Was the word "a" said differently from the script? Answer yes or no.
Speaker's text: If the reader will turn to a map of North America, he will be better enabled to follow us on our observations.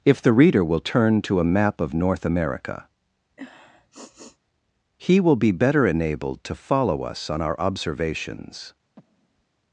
no